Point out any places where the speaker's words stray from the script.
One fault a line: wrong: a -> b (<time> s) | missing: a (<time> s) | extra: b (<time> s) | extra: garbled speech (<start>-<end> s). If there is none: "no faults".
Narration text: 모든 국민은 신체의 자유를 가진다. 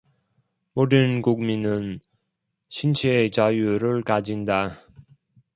no faults